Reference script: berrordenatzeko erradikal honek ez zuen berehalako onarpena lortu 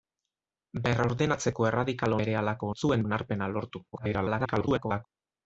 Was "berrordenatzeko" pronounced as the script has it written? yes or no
yes